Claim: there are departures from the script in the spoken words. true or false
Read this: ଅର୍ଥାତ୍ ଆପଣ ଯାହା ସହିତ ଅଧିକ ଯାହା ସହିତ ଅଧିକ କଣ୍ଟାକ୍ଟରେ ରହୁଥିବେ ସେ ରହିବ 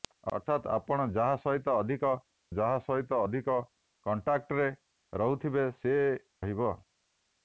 false